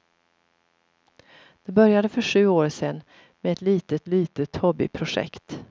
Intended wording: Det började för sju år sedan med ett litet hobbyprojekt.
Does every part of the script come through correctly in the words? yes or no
no